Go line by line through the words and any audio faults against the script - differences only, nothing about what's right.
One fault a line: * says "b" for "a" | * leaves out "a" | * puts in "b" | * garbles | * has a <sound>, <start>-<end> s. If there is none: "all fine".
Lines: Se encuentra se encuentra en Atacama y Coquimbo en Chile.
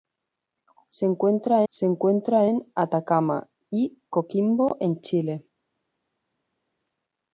all fine